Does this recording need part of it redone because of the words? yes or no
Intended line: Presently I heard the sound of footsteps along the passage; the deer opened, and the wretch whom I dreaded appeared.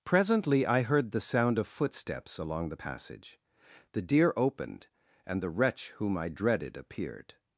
no